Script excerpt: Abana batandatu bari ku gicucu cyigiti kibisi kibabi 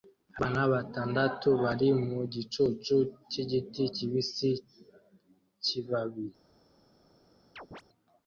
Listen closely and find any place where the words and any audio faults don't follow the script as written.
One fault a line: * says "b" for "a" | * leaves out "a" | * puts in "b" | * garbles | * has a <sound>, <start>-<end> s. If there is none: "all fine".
* says "mu" for "ku"
* has a chirp, 7.6-7.8 s